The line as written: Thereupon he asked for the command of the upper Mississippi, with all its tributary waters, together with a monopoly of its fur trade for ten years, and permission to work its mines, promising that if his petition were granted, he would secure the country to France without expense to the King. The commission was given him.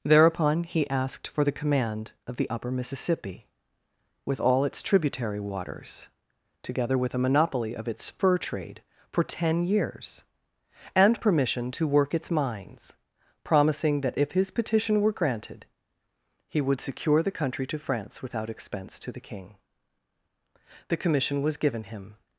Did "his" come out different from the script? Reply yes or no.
no